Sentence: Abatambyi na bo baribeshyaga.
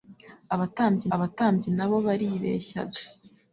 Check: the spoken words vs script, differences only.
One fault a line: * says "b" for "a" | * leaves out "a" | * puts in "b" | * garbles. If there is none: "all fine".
* puts in "abatambyi"